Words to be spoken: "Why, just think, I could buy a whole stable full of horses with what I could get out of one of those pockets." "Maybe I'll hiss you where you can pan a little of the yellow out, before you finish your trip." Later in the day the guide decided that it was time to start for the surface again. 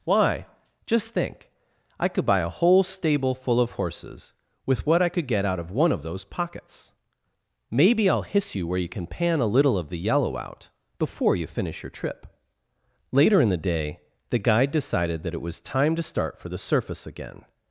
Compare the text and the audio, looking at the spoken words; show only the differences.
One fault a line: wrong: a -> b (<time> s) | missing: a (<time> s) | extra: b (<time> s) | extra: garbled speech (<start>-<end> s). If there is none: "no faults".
no faults